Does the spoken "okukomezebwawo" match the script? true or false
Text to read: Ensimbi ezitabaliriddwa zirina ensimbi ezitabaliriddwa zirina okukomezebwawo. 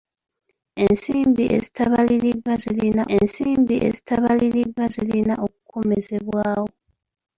true